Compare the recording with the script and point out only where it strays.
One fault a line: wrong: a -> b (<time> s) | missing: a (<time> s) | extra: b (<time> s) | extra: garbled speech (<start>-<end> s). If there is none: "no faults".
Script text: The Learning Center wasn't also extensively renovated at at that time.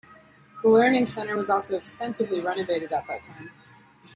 wrong: wasn't -> was (1.4 s)
missing: at (3.1 s)